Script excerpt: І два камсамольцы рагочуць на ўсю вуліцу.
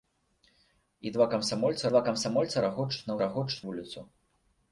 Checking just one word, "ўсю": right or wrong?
wrong